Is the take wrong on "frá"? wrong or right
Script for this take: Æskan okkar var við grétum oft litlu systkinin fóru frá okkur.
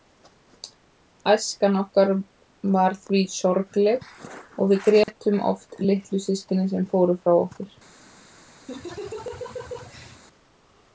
right